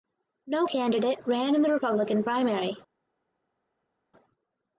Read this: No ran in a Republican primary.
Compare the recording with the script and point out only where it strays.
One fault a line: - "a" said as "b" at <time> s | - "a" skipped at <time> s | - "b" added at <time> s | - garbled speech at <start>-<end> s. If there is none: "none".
- "candidate" added at 0.6 s
- "a" said as "the" at 1.6 s